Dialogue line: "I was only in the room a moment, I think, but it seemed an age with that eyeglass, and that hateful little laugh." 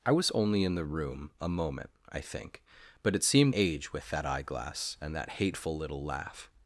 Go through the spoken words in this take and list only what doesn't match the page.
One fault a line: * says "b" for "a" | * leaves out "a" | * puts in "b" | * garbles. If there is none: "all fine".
* leaves out "an"